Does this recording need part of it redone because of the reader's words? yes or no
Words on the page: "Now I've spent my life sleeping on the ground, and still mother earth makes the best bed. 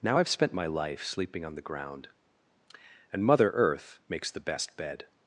yes